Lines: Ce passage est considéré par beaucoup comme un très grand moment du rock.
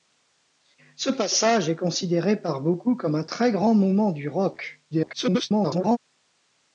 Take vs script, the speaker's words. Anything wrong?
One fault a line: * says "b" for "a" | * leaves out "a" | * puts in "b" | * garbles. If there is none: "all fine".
* garbles